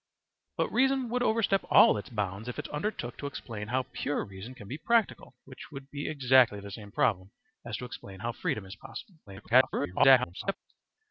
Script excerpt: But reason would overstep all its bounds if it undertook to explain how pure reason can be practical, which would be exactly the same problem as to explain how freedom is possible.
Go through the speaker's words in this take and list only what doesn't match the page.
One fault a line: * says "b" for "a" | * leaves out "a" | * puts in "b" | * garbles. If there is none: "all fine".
* garbles